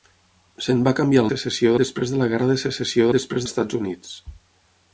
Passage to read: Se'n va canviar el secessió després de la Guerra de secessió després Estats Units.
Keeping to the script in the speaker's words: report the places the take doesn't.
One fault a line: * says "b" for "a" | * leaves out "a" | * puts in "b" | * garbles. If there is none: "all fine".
all fine